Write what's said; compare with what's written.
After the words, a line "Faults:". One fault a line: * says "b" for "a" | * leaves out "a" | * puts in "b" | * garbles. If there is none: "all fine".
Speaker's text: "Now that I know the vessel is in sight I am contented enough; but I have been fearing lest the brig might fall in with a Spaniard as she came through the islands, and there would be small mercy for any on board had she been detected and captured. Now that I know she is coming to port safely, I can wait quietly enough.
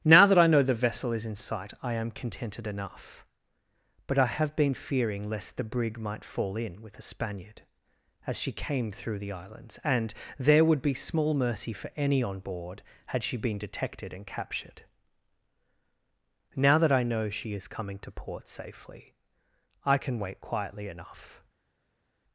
"Now that I know the vessel is in sight I am contented enough; but I have been fearing lest the brig might fall in with a Spaniard as she came through the islands, and there would be small mercy for any on board had she been detected and captured. Now that I know she is coming to port safely, I can wait quietly enough.
Faults:
all fine